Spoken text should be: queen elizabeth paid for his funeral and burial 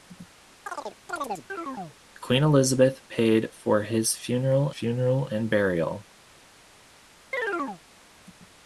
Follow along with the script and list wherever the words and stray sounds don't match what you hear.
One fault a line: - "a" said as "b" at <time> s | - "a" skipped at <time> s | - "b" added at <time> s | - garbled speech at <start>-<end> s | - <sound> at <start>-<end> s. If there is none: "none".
- chirp at 0.7-2.0 s
- "funeral" added at 4.7 s
- chirp at 7.3-7.8 s